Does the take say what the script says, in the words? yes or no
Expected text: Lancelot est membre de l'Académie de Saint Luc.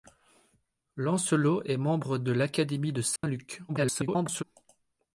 no